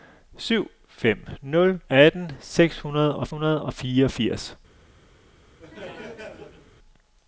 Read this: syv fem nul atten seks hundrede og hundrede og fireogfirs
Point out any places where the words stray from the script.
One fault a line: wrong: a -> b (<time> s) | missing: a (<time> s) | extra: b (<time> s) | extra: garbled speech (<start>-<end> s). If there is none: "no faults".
no faults